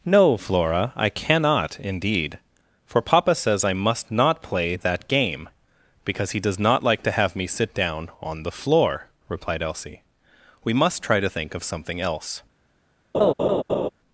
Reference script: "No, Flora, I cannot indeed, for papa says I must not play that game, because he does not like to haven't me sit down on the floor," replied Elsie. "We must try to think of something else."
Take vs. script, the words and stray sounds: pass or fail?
fail